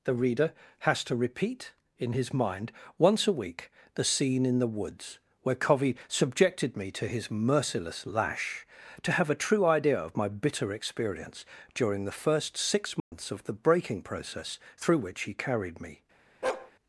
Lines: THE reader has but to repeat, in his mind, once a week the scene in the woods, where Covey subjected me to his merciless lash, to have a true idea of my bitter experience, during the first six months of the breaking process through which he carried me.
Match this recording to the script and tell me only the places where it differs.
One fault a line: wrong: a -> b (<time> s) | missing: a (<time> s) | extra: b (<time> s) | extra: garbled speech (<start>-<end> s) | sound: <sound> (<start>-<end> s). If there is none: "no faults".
missing: but (1.0 s)
sound: dropout (13.0-13.1 s)
sound: bark (16.4-16.7 s)